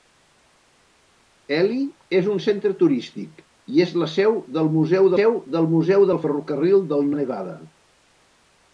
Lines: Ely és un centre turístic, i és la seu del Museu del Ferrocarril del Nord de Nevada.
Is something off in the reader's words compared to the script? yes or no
yes